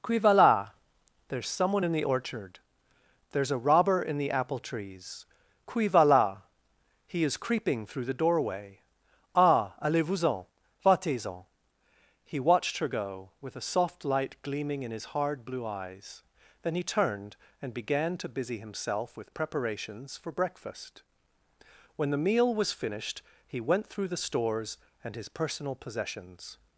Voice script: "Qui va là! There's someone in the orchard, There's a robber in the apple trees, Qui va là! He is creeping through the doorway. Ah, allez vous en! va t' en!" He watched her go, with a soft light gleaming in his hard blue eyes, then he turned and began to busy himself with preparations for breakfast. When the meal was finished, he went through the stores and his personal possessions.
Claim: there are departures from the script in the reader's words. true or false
false